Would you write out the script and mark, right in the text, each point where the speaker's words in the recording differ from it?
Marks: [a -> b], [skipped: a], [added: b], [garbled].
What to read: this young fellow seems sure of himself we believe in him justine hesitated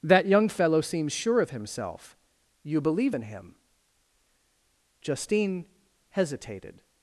[this -> that] young fellow seems sure of himself [we -> you] believe in him justine hesitated